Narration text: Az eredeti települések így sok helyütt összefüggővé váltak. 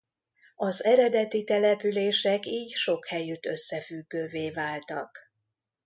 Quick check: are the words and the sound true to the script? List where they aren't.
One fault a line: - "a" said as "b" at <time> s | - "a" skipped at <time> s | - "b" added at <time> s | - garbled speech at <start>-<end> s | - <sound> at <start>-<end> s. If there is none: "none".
none